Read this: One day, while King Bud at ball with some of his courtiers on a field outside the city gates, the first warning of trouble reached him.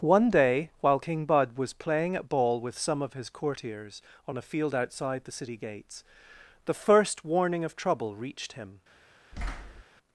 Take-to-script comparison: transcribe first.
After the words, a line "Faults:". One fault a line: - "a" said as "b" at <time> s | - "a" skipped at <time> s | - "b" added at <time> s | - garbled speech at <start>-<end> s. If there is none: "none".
One day, while King Bud was playing at ball with some of his courtiers on a field outside the city gates, the first warning of trouble reached him.
Faults:
- "was playing" added at 1.6 s